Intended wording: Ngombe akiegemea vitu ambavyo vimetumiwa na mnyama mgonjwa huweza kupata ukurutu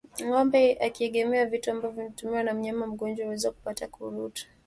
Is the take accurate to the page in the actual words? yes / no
yes